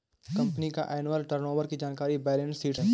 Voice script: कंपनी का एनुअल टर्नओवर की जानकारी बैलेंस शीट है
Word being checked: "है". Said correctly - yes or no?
yes